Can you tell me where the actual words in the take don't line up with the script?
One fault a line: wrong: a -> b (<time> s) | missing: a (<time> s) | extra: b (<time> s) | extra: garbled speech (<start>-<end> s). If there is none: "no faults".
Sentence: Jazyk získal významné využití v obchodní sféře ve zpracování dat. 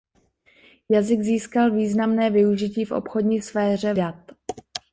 missing: ve zpracování (3.9 s)